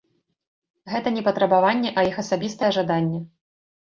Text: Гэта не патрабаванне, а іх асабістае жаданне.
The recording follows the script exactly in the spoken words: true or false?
true